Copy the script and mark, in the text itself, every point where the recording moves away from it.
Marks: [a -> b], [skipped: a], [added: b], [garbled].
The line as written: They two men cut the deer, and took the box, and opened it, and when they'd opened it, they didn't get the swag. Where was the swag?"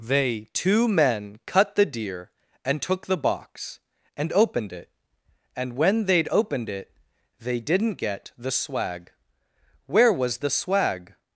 They two men cut the deer, and took the box, and opened it, and when they'd opened it, they didn't get the swag. Where was the swag?"